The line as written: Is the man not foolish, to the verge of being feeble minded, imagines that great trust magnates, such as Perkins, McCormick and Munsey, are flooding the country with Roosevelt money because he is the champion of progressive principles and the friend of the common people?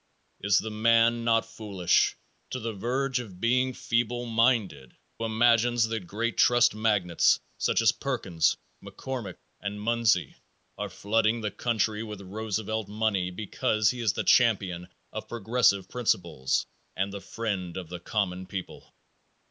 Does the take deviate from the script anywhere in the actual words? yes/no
no